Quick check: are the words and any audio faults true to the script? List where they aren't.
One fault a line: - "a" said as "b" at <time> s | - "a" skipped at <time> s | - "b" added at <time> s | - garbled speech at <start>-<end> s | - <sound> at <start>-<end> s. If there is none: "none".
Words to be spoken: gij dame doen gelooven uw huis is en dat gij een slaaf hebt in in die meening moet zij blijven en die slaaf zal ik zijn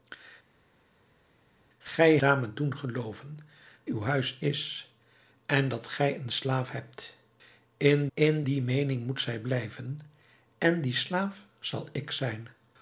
none